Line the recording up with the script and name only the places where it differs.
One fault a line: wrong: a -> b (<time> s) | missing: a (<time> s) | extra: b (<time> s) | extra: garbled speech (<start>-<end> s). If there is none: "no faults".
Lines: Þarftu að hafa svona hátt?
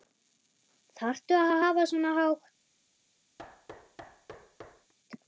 extra: að (1.5 s)